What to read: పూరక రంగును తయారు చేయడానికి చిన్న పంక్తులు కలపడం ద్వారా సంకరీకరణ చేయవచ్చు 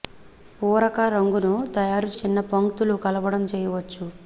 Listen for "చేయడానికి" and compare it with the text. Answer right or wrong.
wrong